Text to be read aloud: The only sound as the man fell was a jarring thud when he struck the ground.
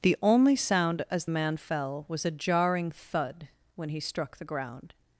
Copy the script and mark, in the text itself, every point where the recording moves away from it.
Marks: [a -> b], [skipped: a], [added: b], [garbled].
The only sound as [skipped: the] man fell was a jarring thud when he struck the ground.